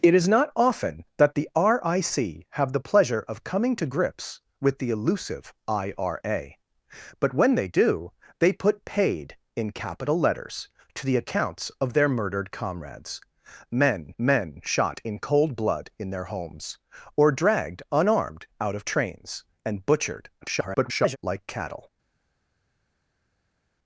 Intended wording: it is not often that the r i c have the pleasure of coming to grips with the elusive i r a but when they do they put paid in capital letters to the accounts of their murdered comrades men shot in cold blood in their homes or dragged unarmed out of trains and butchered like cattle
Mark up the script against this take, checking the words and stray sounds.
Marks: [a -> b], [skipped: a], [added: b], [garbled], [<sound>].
it is not often that the r i c have the pleasure of coming to grips with the elusive i r a but when they do they put paid in capital letters to the accounts of their murdered comrades men [added: men] shot in cold blood in their homes or dragged unarmed out of trains and butchered [garbled] like cattle